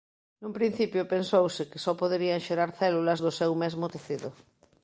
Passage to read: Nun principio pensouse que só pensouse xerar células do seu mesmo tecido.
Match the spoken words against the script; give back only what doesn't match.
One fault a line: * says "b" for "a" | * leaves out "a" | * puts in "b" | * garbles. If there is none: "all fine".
* says "poderían" for "pensouse"